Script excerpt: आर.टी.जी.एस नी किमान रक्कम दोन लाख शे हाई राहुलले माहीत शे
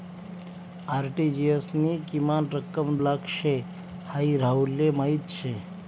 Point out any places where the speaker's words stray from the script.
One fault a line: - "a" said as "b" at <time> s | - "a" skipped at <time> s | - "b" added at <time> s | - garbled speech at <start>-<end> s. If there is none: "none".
- "दोन" skipped at 3.0 s